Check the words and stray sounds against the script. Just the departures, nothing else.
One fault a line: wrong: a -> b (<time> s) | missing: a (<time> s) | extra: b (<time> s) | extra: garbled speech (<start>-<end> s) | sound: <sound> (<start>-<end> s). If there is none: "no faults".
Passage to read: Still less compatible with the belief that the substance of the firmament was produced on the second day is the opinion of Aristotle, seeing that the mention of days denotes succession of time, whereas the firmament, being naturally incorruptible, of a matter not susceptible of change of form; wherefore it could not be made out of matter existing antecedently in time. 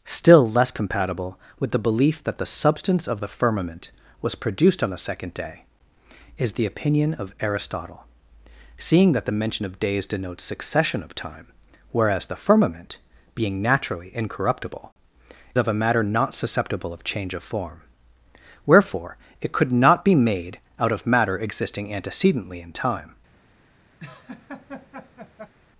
sound: laugh (24.0-25.5 s)